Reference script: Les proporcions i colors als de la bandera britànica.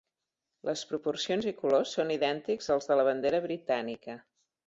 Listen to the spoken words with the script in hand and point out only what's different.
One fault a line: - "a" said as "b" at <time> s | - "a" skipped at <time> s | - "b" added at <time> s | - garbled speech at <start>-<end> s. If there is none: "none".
- "són idèntics" added at 2.0 s